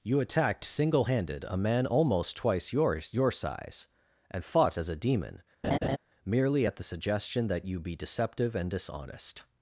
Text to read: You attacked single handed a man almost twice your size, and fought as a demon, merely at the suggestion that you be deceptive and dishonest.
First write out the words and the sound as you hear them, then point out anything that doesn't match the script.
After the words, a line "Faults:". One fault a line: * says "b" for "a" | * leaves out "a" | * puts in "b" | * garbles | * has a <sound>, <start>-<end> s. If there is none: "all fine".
You attacked single handed a man almost twice your your size, and fought as a demon, merely at the suggestion that you be deceptive and dishonest.
Faults:
* puts in "your"
* has a laugh, 5.6-6.0 s